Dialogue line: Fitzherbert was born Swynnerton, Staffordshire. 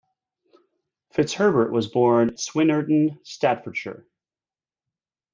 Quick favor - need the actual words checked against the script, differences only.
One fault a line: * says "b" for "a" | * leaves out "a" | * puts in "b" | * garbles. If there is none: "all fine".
all fine